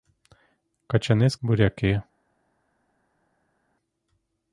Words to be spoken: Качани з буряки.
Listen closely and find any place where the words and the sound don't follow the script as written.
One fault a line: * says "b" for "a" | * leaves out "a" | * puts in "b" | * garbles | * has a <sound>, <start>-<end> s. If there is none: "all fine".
all fine